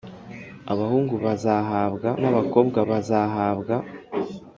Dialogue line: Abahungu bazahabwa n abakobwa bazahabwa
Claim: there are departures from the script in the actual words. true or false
false